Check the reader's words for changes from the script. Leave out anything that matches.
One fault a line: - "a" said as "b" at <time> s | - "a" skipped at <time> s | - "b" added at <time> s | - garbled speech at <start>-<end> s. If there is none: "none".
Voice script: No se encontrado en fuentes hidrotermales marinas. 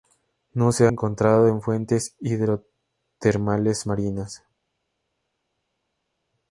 none